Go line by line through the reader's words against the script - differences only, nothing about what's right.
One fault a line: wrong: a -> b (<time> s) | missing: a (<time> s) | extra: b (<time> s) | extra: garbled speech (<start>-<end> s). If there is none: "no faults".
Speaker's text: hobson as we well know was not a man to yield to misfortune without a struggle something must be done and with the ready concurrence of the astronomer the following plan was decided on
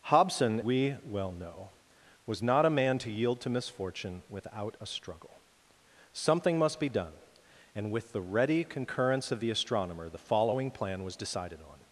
missing: as (0.6 s)